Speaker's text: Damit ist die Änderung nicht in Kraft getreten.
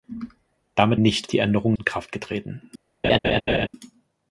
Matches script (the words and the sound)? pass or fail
fail